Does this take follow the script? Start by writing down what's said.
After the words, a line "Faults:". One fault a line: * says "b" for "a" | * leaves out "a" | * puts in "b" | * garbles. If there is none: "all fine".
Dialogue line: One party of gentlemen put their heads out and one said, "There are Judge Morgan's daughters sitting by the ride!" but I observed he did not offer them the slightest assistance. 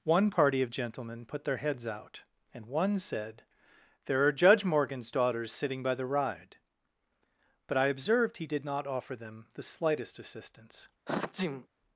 One party of gentlemen put their heads out and one said, "There are Judge Morgan's daughters sitting by the ride!" but I observed he did not offer them the slightest assistance.
Faults:
all fine